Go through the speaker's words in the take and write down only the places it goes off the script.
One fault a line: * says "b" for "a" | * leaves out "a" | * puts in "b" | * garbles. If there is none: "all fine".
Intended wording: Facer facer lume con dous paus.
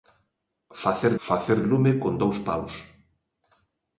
all fine